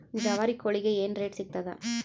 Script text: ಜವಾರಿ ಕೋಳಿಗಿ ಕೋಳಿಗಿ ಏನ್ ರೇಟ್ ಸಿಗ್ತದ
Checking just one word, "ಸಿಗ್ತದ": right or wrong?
right